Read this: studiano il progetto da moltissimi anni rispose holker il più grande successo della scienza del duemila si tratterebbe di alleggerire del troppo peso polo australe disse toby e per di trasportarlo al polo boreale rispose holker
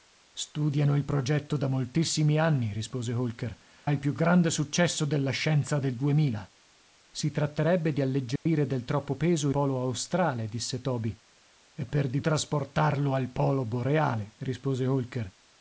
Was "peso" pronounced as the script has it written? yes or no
yes